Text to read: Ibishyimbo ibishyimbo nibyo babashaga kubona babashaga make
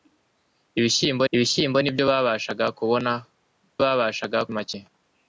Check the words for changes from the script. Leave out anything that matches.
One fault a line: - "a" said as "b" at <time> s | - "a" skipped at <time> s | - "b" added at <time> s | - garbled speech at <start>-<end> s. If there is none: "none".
none